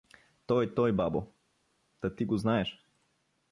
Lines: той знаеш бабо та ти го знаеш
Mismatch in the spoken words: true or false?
true